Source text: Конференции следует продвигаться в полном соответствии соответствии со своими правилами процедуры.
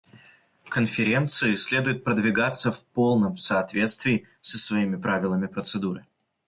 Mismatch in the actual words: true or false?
true